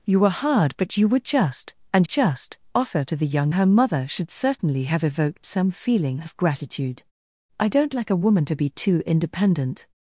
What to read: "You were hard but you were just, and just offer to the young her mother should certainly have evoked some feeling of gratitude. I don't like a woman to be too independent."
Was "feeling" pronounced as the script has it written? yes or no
yes